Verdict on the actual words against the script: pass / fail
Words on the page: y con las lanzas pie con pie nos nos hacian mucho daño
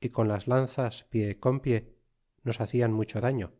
fail